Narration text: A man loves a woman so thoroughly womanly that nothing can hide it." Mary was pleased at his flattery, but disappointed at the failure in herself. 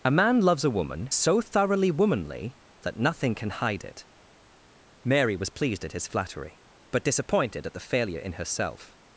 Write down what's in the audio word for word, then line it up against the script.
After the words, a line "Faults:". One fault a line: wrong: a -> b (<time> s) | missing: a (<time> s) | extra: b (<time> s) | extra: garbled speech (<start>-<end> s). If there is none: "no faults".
A man loves a woman so thoroughly womanly that nothing can hide it." Mary was pleased at his flattery, but disappointed at the failure in herself.
Faults:
no faults